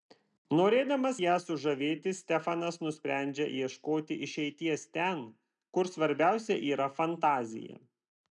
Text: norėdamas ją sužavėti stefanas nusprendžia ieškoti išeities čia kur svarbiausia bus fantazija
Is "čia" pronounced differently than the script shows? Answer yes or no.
yes